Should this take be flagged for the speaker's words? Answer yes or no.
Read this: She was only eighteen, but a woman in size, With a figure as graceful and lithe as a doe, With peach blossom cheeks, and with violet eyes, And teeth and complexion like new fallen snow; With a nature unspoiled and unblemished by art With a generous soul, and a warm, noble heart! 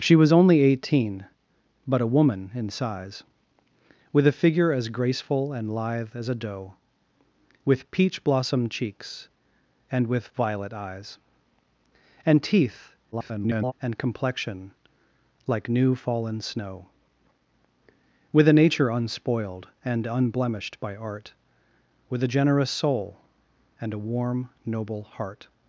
yes